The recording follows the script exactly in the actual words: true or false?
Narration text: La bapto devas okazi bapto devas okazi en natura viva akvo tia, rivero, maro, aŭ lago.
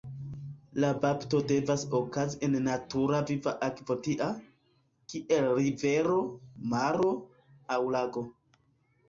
false